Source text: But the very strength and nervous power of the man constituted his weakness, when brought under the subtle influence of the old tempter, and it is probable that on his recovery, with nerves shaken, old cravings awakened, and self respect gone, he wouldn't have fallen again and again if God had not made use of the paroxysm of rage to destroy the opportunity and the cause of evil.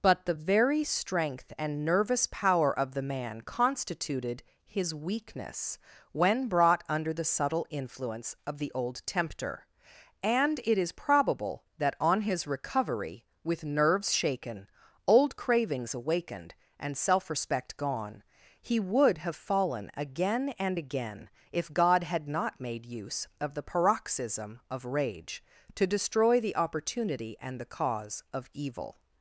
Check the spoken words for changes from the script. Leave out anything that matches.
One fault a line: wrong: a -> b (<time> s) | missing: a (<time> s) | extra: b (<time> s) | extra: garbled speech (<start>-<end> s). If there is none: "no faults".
wrong: wouldn't -> would (18.8 s)